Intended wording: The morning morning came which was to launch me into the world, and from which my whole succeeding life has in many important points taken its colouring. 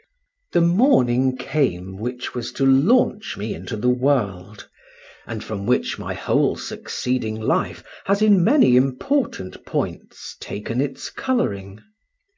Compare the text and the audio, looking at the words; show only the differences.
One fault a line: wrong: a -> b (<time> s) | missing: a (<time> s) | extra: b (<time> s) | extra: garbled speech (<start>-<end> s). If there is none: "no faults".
missing: morning (1.4 s)